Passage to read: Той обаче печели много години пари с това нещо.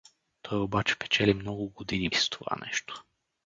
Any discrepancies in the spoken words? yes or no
yes